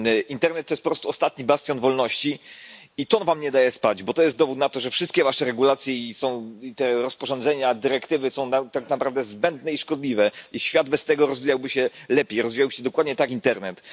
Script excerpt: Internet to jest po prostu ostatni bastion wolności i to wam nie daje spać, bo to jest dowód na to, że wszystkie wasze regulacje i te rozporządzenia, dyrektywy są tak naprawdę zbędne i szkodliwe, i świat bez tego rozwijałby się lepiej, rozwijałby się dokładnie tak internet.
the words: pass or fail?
pass